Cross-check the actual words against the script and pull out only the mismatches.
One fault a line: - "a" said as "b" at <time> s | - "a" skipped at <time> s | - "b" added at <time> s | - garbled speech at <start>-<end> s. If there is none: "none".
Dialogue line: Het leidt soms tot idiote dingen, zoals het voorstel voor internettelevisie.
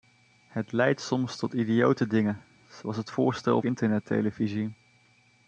- "voor" skipped at 3.6 s